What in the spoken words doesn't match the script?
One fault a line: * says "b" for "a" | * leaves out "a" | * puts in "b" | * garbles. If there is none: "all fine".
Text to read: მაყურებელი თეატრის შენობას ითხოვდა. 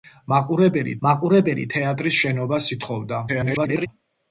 * puts in "მაყურებელი"
* garbles